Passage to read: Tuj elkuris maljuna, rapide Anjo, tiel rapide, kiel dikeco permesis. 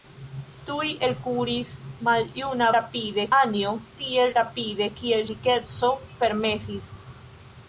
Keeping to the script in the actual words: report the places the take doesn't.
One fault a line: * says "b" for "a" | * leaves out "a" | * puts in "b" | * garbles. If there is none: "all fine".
all fine